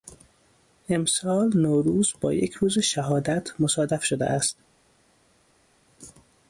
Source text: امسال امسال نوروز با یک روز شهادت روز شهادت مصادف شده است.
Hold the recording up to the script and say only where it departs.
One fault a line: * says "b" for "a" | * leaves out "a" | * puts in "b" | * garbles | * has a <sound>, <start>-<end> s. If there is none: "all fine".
* leaves out "امسال"
* leaves out "روز شهادت"